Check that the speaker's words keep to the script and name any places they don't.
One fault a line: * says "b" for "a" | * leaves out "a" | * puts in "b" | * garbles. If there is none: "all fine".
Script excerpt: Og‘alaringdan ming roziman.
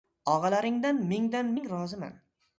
* puts in "mingdan"